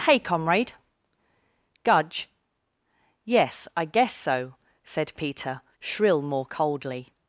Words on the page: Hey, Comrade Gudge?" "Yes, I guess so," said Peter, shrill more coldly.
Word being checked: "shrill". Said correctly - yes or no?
yes